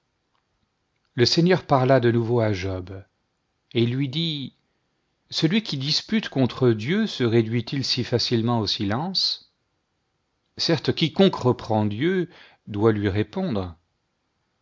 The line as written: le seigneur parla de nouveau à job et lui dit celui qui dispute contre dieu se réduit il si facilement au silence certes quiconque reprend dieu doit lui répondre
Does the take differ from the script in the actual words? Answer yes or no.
no